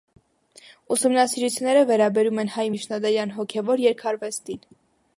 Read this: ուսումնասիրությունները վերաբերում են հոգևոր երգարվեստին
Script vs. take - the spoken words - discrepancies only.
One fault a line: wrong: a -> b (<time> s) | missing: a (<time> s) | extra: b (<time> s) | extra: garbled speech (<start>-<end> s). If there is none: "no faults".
extra: հայ միջնադարյան (2.6 s)